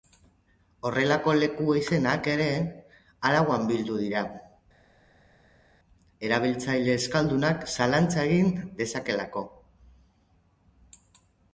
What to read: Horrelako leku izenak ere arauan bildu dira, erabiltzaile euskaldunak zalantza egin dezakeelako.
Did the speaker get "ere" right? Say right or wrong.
right